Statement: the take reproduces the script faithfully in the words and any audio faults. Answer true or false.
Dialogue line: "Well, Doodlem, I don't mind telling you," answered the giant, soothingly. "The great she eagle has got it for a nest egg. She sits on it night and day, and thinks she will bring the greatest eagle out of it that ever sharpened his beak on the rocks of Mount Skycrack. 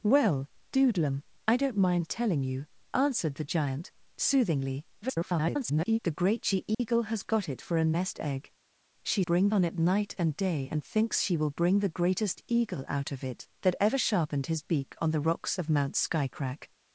false